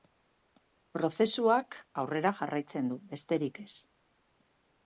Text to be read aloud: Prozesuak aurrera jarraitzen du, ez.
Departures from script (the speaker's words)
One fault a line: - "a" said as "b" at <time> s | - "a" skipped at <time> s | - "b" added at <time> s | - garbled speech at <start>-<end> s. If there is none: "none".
- "besterik" added at 3.1 s